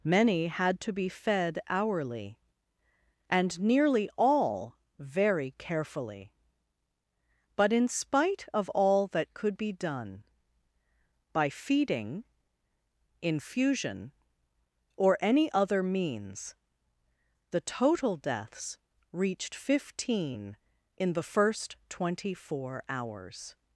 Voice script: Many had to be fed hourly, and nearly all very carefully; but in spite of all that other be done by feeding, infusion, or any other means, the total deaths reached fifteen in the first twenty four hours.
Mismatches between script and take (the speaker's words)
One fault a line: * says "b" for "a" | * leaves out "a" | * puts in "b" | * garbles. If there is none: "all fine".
* says "could" for "other"